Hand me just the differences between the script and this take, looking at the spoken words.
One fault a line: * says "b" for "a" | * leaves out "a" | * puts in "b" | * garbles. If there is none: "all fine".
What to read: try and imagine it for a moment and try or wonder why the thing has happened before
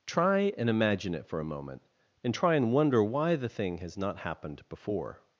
* says "and" for "or"
* puts in "not"